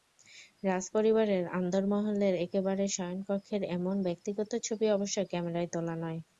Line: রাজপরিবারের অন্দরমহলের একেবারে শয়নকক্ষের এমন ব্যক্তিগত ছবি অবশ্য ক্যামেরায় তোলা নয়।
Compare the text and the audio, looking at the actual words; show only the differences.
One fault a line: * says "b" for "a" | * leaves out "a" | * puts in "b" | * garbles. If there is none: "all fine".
all fine